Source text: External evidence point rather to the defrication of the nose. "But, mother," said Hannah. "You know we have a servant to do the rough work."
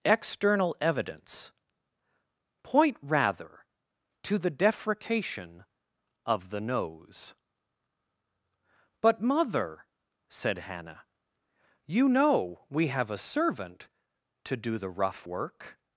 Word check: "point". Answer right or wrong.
right